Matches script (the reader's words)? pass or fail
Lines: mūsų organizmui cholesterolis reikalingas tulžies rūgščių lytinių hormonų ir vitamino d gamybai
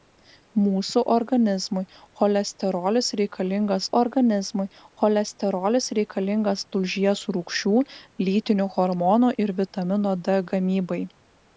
fail